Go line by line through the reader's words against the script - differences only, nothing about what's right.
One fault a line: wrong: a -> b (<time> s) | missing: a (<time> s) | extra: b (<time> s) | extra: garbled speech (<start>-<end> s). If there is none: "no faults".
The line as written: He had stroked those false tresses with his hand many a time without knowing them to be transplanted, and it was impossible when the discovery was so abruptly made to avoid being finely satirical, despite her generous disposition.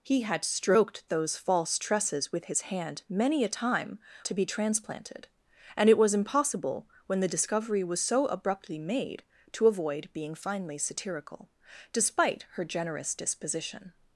missing: without knowing them (4.0 s)